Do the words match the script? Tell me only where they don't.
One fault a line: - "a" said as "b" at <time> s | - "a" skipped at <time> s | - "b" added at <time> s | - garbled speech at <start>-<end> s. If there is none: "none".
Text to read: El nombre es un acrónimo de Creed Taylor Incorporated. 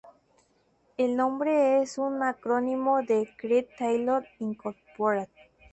none